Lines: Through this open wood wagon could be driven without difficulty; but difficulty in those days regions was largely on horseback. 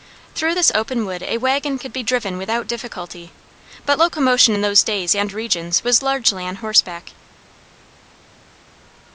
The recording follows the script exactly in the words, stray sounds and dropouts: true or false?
false